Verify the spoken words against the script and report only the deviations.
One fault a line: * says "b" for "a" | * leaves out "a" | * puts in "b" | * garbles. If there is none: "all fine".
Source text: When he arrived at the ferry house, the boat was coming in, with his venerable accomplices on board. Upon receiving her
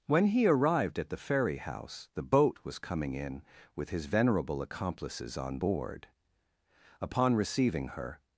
all fine